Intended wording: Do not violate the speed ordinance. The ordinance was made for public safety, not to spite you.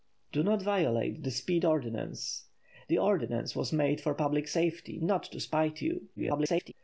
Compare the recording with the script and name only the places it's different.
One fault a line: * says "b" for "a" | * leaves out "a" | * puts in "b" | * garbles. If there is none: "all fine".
* garbles